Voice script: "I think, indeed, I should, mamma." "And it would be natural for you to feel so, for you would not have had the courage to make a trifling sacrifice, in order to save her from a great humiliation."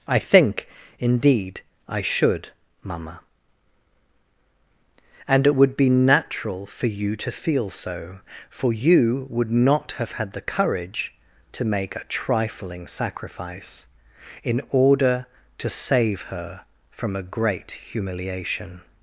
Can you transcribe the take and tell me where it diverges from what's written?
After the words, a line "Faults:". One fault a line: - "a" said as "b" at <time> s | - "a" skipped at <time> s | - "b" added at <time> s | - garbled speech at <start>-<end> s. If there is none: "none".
"I think, indeed, I should, mamma." "And it would be natural for you to feel so, for you would not have had the courage to make a trifling sacrifice, in order to save her from a great humiliation."
Faults:
none